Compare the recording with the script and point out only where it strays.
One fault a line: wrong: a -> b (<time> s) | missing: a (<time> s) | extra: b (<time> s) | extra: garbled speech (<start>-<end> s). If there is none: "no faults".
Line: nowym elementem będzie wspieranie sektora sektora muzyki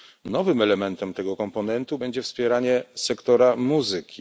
extra: tego komponentu (1.1 s)
missing: sektora (3.6 s)